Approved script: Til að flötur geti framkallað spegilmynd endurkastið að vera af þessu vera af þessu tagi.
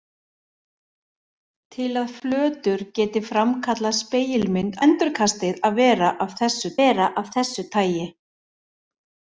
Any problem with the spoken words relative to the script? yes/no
no